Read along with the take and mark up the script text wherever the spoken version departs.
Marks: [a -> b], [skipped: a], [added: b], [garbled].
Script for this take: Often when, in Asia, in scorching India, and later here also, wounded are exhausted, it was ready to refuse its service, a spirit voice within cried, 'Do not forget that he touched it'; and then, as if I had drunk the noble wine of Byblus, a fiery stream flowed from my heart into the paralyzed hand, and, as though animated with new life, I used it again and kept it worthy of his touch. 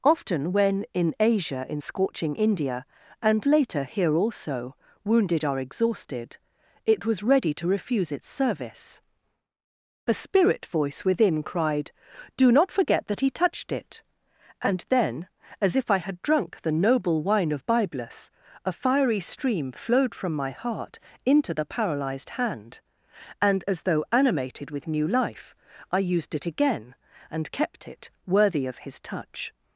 Often when, in Asia, in scorching India, and later here also, wounded are exhausted, it was ready to refuse its service, a spirit voice within cried, 'Do not forget that he touched it'; and then, as if I had drunk the noble wine of Byblus, a fiery stream flowed from my heart into the paralyzed hand, and, as though animated with new life, I used it again and kept it worthy of his touch.